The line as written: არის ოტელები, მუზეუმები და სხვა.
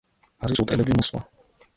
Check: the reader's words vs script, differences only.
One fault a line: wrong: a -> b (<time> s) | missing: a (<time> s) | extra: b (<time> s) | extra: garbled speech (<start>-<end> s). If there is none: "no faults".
missing: მუზეუმები (1.0 s)